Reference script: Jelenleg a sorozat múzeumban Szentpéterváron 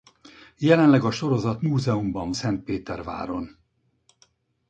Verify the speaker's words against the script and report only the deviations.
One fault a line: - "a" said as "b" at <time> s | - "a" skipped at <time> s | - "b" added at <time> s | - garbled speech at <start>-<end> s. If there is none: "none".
none